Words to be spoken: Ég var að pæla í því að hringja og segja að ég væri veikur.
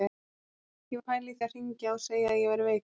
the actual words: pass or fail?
fail